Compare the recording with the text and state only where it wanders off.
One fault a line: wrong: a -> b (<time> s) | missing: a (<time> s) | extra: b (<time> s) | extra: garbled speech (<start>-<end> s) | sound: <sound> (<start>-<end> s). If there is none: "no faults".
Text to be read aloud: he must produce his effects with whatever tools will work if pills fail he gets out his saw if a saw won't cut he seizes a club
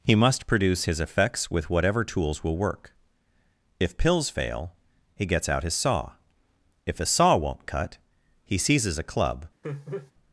sound: laugh (9.6-10.1 s)